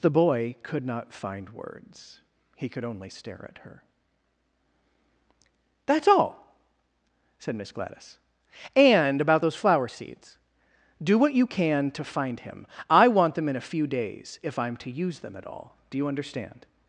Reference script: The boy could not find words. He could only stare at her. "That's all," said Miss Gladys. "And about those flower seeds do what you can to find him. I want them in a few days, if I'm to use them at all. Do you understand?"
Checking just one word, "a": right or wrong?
right